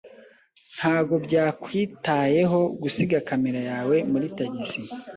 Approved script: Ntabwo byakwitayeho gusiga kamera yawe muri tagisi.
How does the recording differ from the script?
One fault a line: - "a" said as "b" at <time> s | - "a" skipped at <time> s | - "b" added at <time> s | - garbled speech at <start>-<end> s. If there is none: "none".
none